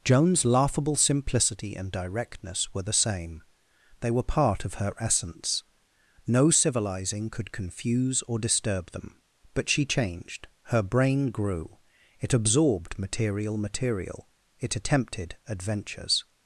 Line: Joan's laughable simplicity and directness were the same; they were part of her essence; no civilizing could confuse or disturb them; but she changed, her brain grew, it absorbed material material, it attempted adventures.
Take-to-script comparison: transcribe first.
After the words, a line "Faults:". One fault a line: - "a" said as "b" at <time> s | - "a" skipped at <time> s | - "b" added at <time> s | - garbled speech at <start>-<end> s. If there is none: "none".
Joan's laughable simplicity and directness were the same; they were part of her essence; no civilizing could confuse or disturb them; but she changed, her brain grew, it absorbed material material, it attempted adventures.
Faults:
none